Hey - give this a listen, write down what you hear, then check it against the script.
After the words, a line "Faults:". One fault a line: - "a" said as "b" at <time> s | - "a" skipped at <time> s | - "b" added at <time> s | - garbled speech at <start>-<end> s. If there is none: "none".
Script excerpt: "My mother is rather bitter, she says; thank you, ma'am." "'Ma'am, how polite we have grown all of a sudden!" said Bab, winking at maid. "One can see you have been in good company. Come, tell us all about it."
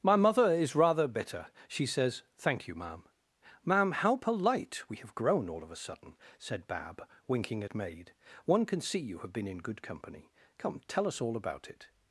"My mother is rather bitter, she says; thank you, ma'am." "'Ma'am, how polite we have grown all of a sudden!" said Bab, winking at maid. "One can see you have been in good company. Come, tell us all about it."
Faults:
none